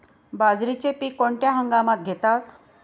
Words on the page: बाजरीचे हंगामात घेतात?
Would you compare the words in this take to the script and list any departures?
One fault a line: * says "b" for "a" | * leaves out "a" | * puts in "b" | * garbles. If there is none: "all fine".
* puts in "पीक कोणत्या"